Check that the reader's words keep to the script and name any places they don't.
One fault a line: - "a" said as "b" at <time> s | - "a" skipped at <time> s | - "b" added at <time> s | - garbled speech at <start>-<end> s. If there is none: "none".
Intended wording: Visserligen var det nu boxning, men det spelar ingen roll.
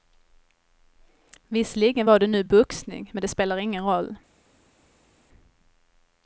none